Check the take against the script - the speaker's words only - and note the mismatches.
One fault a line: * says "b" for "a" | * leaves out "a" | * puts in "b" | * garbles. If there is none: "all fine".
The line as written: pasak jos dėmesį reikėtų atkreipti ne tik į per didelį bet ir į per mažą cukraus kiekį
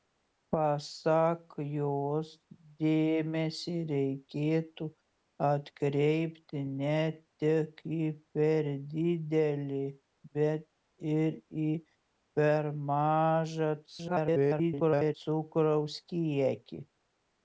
* garbles